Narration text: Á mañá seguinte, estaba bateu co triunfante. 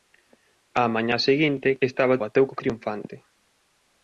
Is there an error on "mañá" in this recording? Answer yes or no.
no